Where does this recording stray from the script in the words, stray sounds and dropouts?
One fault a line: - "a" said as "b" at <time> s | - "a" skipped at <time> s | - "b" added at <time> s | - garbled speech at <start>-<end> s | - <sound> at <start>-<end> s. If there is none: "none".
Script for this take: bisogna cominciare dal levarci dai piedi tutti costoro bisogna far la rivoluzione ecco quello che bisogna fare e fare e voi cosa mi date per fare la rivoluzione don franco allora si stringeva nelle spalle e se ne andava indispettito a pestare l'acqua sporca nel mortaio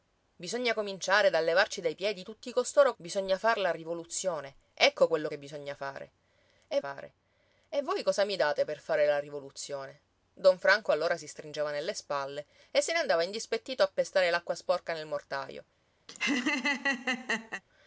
- laugh at 16.1-17.6 s